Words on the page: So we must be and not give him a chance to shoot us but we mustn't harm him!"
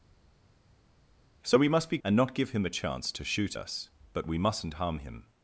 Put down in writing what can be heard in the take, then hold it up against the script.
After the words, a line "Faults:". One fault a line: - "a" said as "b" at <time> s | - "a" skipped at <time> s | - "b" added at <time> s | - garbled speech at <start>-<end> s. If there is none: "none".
So we must be and not give him a chance to shoot us but we mustn't harm him!"
Faults:
none